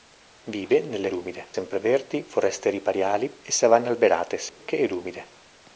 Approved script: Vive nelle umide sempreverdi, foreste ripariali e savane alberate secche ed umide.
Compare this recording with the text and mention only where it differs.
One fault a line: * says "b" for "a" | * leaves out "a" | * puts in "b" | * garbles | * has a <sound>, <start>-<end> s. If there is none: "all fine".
* has a dropout, 4.5-4.6 s